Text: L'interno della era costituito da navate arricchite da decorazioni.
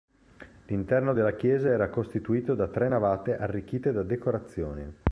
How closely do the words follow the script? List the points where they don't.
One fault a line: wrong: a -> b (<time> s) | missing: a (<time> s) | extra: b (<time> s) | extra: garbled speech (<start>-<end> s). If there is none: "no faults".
extra: chiesa (1.3 s)
extra: tre (2.7 s)